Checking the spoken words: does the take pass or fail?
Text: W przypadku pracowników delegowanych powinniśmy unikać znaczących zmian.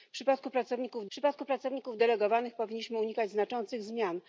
fail